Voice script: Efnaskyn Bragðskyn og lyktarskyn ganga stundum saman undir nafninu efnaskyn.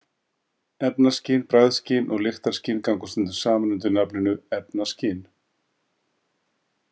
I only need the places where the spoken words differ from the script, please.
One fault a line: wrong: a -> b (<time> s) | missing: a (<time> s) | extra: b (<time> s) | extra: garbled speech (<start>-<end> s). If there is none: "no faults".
no faults